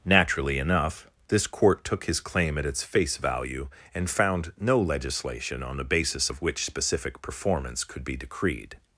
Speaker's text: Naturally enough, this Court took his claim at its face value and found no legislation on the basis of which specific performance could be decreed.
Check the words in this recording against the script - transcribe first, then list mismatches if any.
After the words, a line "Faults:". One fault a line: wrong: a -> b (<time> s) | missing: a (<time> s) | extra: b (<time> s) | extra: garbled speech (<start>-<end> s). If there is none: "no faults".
Naturally enough, this Court took his claim at its face value and found no legislation on the basis of which specific performance could be decreed.
Faults:
no faults